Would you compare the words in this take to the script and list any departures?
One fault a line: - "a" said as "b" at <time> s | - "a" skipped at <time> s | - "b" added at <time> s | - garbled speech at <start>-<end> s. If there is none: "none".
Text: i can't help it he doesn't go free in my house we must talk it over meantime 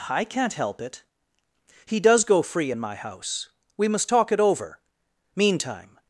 - "doesn't" said as "does" at 2.0 s